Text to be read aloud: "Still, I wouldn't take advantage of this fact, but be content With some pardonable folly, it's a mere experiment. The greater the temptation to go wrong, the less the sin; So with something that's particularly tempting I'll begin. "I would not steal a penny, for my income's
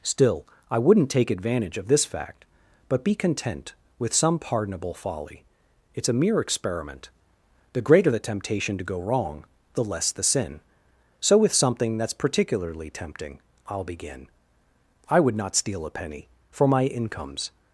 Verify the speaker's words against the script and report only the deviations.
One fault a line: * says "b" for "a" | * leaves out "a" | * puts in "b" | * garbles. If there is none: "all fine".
all fine